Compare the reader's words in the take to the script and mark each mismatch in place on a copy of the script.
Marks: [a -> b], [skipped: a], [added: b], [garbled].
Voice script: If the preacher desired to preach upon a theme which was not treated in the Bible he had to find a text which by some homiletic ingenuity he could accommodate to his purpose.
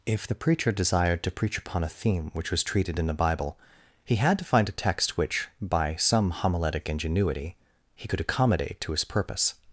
If the preacher desired to preach upon a theme which was [skipped: not] treated in the Bible he had to find a text which by some homiletic ingenuity he could accommodate to his purpose.